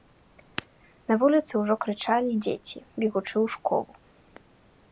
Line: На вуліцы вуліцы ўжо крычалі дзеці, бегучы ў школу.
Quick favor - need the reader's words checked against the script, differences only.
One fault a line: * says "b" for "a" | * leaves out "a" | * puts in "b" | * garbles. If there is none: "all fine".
* leaves out "вуліцы"